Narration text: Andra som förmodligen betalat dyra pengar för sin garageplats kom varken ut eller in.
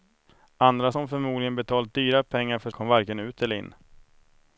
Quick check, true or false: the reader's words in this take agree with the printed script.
false